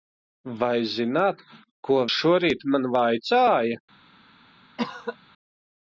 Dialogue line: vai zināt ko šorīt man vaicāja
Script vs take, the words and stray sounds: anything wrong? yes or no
yes